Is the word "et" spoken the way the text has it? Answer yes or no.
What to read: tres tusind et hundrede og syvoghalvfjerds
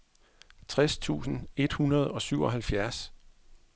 yes